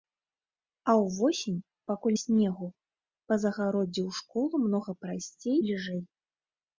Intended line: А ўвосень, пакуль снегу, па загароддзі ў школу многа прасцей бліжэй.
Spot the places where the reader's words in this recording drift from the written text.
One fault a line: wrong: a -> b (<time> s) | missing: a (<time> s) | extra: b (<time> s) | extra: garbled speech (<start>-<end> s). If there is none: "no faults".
no faults